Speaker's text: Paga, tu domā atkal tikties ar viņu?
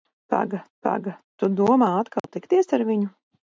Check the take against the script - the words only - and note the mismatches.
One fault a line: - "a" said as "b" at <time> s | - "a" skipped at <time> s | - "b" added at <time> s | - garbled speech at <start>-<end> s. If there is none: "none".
- "paga" added at 0.9 s